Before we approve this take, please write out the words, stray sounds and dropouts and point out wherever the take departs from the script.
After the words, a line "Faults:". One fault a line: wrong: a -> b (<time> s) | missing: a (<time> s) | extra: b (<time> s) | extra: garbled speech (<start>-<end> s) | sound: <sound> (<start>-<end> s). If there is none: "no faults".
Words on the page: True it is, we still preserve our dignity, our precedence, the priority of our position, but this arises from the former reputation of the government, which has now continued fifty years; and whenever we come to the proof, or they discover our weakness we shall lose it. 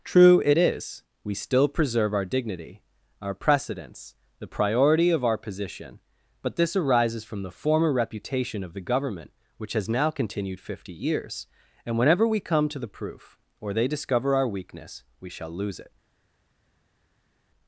True it is, we still preserve our dignity, our precedence, the priority of our position, but this arises from the former reputation of the government, which has now continued fifty years; and whenever we come to the proof, or they discover our weakness we shall lose it.
Faults:
no faults